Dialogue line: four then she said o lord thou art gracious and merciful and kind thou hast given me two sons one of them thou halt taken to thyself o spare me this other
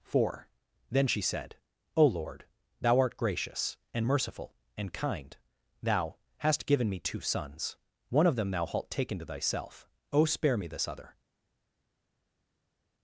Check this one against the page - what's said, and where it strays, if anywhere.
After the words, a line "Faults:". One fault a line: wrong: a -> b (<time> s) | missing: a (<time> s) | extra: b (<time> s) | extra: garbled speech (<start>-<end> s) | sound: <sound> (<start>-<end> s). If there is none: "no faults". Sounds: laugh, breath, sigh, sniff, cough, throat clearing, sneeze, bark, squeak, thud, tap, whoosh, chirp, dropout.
four then she said o lord thou art gracious and merciful and kind thou hast given me two sons one of them thou halt taken to thyself o spare me this other
Faults:
no faults